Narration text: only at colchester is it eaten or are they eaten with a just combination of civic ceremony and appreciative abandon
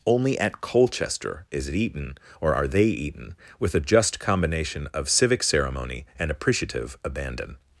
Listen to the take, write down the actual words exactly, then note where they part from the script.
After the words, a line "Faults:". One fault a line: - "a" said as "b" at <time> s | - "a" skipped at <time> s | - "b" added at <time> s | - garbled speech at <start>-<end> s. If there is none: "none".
only at colchester is it eaten or are they eaten with a just combination of civic ceremony and appreciative abandon
Faults:
none